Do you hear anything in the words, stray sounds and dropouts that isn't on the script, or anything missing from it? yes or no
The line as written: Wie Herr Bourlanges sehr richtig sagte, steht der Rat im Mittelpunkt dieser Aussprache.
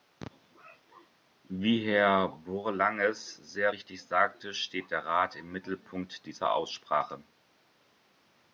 no